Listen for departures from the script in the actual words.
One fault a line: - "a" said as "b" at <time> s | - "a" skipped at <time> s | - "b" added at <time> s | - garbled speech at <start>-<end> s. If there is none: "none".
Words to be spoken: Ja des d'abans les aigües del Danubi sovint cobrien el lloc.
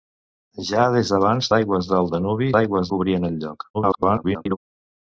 - "les" skipped at 1.5 s
- "sovint" said as "aigües" at 2.6 s
- garbled speech at 3.7-4.6 s